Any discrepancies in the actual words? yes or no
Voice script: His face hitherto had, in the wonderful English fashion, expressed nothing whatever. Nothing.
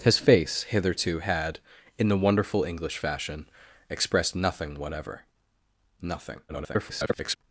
yes